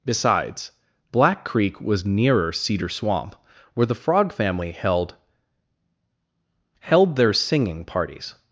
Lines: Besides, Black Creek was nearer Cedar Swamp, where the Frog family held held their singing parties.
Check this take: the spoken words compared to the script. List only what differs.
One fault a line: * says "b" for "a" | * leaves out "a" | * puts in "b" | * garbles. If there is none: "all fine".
all fine